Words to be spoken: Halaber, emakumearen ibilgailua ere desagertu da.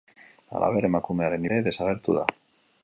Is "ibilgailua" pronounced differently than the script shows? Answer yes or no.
yes